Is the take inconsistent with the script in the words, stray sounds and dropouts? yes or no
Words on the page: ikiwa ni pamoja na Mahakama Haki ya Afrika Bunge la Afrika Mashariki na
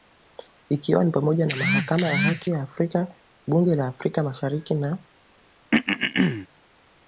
yes